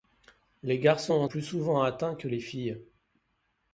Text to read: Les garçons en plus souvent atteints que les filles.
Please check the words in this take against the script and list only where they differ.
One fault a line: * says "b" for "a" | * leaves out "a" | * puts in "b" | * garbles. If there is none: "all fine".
all fine